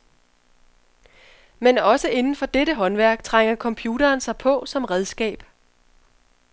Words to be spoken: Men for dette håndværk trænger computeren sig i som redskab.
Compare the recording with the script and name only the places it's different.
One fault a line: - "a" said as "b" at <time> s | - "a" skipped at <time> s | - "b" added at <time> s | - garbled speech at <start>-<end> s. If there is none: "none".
- "også inden" added at 1.8 s
- "i" said as "på" at 4.4 s